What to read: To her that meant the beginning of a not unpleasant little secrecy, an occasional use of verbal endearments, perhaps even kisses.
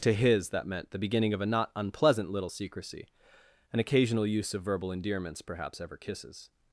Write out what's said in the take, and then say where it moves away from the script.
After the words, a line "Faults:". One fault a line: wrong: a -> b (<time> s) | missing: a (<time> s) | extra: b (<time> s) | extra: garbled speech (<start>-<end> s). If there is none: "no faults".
To his that meant the beginning of a not unpleasant little secrecy, an occasional use of verbal endearments, perhaps ever kisses.
Faults:
wrong: her -> his (0.1 s)
wrong: even -> ever (5.8 s)